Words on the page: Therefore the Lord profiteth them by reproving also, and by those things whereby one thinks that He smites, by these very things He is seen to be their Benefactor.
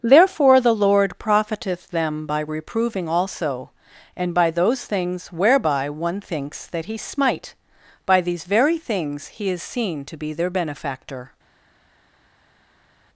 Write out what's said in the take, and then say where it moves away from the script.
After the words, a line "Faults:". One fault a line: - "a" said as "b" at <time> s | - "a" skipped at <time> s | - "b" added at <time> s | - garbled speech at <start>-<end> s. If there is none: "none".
Therefore the Lord profiteth them by reproving also, and by those things whereby one thinks that He smite, by these very things He is seen to be their Benefactor.
Faults:
- "smites" said as "smite" at 7.0 s